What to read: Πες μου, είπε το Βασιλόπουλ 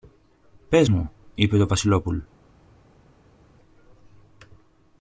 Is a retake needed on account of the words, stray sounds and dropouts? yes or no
no